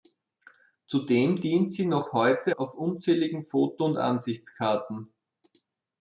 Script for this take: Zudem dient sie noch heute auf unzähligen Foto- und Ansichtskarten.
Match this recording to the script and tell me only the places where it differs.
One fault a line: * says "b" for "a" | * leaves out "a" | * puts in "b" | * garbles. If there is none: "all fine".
all fine